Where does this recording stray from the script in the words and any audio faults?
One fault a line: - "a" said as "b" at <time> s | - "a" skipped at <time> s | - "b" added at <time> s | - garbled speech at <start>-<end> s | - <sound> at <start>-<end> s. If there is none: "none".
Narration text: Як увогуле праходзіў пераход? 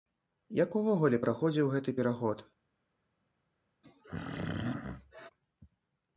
- "гэты" added at 1.7 s
- throat clearing at 3.8-5.3 s